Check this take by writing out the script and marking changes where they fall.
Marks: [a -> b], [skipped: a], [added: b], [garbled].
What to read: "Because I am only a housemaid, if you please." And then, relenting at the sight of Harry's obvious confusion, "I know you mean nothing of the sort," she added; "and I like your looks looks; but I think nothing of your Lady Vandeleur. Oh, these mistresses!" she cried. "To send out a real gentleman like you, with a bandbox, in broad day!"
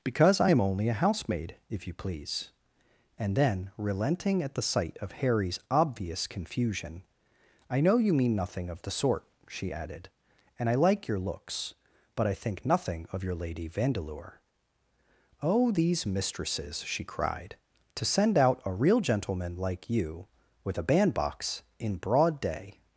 "Because I am only a housemaid, if you please." And then, relenting at the sight of Harry's obvious confusion, "I know you mean nothing of the sort," she added; "and I like your looks [skipped: looks;] but I think nothing of your Lady Vandeleur. Oh, these mistresses!" she cried. "To send out a real gentleman like you, with a bandbox, in broad day!"